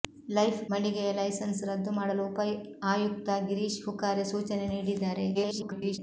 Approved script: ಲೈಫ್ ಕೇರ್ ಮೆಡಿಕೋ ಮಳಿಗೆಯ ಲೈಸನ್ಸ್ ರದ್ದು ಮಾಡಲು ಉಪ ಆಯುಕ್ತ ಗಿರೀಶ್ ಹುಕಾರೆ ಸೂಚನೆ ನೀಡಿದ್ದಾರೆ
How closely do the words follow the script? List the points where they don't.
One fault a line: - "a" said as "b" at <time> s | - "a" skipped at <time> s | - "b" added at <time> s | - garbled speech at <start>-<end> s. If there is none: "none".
- "ಕೇರ್ ಮೆಡಿಕೋ" skipped at 0.6 s
- garbled speech at 5.3-6.0 s